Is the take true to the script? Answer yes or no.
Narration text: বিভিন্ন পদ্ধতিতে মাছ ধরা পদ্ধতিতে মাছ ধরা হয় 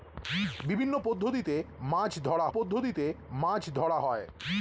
yes